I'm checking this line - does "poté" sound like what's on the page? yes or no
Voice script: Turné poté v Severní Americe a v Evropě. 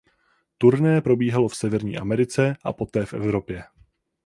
no